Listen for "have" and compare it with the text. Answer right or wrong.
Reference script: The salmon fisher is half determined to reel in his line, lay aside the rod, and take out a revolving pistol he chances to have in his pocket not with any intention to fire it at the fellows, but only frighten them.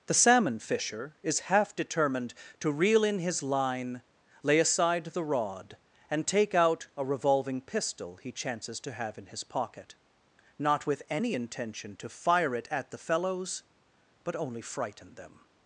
right